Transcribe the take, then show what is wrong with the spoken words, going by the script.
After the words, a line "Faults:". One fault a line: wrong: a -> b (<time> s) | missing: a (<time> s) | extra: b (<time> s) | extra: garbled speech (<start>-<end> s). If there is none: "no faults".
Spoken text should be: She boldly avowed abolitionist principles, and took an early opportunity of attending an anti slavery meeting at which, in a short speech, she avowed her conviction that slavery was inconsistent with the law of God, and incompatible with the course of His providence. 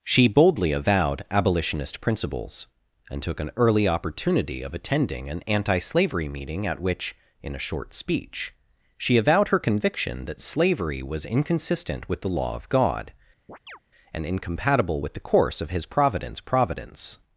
She boldly avowed abolitionist principles, and took an early opportunity of attending an anti slavery meeting at which, in a short speech, she avowed her conviction that slavery was inconsistent with the law of God, and incompatible with the course of His providence providence.
Faults:
extra: providence (16.4 s)